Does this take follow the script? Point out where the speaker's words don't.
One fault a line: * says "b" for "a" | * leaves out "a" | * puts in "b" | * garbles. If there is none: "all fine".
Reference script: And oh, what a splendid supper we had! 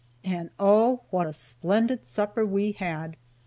all fine